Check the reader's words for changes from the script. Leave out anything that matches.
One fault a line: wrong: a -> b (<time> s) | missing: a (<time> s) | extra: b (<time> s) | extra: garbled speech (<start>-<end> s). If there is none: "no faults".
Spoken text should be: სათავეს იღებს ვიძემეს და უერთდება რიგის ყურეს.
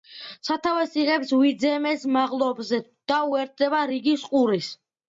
extra: მაღლობზე (2.2 s)